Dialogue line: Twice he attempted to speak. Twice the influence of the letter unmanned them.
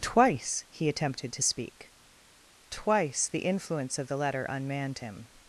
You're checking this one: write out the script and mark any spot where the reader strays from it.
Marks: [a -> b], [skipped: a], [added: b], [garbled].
Twice he attempted to speak. Twice the influence of the letter unmanned [them. -> him]